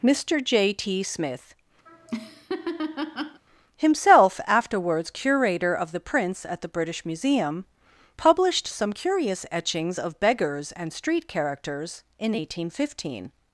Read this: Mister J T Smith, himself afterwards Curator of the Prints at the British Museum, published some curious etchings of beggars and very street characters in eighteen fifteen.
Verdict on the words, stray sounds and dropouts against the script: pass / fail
fail